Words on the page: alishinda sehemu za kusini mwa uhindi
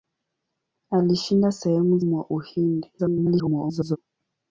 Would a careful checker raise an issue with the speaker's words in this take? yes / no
yes